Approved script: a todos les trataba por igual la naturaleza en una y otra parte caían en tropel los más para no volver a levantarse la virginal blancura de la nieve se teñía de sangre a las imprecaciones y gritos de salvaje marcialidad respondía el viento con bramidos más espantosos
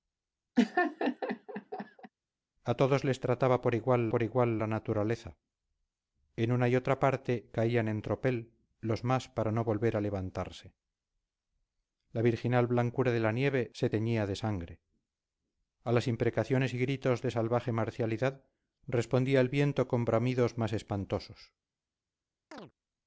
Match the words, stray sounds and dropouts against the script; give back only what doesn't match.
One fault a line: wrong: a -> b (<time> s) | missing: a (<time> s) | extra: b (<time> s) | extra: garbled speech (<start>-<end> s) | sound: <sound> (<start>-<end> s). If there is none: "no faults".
sound: laugh (0.6-2.1 s)
extra: por igual (4.1 s)
sound: chirp (22.5-22.7 s)